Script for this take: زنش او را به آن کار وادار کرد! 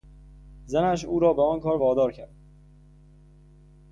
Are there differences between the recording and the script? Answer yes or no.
no